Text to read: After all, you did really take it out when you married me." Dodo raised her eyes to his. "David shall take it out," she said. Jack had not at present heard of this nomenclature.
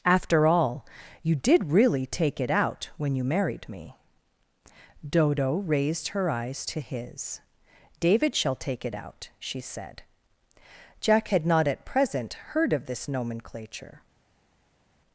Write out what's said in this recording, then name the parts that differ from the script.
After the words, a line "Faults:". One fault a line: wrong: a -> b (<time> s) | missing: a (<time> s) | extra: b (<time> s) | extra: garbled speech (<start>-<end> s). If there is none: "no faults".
After all, you did really take it out when you married me." Dodo raised her eyes to his. "David shall take it out," she said. Jack had not at present heard of this nomenclature.
Faults:
no faults